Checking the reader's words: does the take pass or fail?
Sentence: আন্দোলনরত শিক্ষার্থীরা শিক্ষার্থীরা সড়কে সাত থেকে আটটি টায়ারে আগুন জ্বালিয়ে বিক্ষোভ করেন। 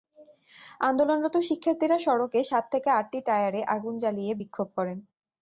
fail